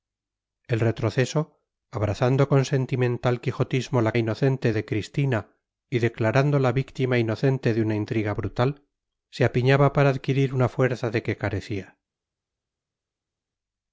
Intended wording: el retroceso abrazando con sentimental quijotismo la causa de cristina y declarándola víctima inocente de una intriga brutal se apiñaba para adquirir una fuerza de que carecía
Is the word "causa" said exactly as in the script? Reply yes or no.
no